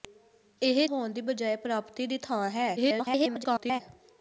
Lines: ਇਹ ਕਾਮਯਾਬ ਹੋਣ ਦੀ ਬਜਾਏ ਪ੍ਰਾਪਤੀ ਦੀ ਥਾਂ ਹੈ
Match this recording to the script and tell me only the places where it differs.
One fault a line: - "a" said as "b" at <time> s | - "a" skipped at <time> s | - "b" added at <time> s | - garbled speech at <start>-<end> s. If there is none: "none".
- "ਕਾਮਯਾਬ" skipped at 0.9 s
- garbled speech at 2.8-3.8 s